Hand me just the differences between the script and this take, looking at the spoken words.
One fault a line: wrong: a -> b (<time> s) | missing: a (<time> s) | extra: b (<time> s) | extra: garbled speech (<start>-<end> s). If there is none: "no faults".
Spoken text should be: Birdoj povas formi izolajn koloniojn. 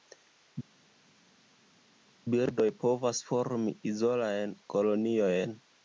no faults